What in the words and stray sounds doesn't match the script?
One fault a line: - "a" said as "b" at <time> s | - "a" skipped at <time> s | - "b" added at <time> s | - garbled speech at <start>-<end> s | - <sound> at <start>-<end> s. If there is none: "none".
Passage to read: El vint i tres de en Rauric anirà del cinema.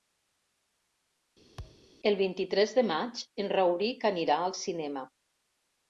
- thud at 1.6-1.9 s
- "maig" added at 2.9 s
- "del" said as "al" at 4.5 s